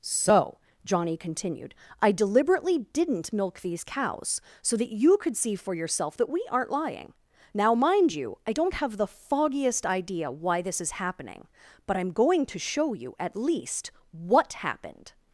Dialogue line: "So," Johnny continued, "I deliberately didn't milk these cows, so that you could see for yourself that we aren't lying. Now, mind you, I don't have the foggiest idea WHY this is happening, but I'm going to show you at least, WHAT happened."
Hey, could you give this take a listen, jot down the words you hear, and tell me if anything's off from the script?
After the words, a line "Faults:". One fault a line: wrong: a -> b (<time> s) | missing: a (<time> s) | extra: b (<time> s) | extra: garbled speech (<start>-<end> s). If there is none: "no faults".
"So," Johnny continued, "I deliberately didn't milk these cows, so that you could see for yourself that we aren't lying. Now, mind you, I don't have the foggiest idea WHY this is happening, but I'm going to show you at least, WHAT happened."
Faults:
no faults